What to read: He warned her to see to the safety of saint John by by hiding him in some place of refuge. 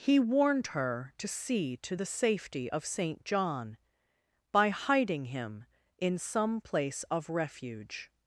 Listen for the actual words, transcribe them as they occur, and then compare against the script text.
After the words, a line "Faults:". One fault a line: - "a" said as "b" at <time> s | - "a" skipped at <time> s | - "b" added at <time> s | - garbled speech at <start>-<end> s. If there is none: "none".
He warned her to see to the safety of saint John by hiding him in some place of refuge.
Faults:
- "by" skipped at 4.7 s